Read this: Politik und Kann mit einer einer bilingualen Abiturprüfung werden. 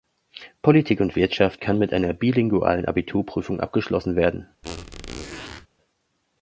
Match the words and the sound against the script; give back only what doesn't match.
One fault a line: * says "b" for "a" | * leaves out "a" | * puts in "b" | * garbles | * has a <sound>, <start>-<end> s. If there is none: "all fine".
* puts in "Wirtschaft"
* leaves out "einer"
* puts in "abgeschlossen"
* has a squeak, 4.6-5.7 s